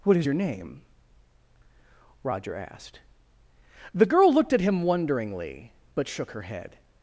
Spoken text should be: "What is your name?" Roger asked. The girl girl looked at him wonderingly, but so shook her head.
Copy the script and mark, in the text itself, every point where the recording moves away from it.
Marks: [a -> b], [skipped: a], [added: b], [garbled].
"What is your name?" Roger asked. The girl [skipped: girl] looked at him wonderingly, but [skipped: so] shook her head.